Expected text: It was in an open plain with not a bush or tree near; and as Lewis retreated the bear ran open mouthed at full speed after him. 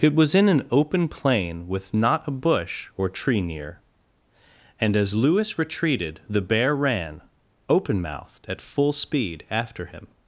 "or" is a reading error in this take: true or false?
false